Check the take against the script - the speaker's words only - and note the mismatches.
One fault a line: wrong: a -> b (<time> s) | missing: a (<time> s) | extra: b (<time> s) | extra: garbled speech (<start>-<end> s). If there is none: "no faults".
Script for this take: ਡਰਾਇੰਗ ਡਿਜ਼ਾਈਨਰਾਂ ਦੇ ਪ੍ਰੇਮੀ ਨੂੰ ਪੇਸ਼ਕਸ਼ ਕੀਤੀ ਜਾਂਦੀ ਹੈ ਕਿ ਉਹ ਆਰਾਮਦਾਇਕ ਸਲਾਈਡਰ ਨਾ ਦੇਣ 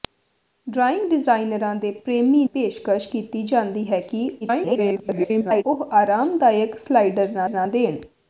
missing: ਨੂੰ (2.4 s)
extra: garbled speech (4.4-5.6 s)
extra: ਨਾ (7.5 s)